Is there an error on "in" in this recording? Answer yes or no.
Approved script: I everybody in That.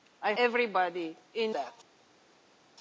no